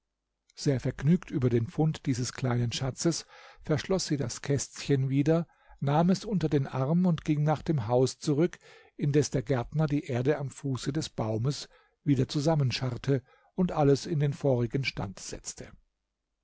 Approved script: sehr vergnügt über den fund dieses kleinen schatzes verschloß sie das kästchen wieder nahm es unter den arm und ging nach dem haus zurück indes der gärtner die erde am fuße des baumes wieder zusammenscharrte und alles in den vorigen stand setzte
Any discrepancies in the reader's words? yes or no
no